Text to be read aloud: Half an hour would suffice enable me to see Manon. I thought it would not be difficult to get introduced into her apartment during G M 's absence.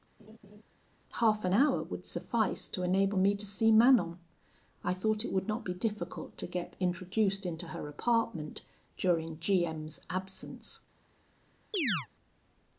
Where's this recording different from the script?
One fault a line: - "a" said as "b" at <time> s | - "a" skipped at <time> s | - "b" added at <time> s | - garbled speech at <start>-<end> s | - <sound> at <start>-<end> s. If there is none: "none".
- laugh at 0.2-0.6 s
- "to" added at 2.7 s
- chirp at 11.7-12.1 s